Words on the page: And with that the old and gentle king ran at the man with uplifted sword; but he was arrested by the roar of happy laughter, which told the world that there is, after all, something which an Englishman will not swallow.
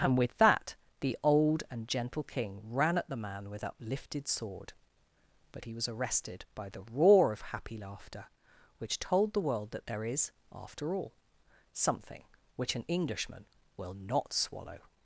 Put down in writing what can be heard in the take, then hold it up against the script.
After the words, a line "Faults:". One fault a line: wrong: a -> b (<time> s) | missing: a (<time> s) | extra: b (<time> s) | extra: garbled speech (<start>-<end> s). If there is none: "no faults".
And with that the old and gentle king ran at the man with uplifted sword; but he was arrested by the roar of happy laughter, which told the world that there is, after all, something which an Englishman will not swallow.
Faults:
no faults